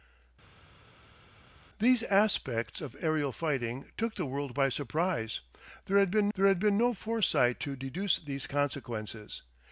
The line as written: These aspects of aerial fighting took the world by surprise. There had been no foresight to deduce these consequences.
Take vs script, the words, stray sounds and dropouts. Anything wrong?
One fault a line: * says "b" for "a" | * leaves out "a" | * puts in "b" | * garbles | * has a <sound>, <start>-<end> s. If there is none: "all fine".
* puts in "there had been"